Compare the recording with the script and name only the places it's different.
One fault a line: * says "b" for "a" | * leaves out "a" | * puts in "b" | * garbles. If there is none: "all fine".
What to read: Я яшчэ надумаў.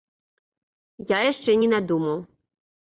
* puts in "не"